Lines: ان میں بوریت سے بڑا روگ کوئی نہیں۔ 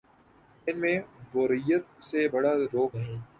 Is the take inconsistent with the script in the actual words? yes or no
yes